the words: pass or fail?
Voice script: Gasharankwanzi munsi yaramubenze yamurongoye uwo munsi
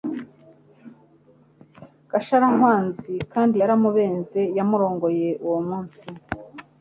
fail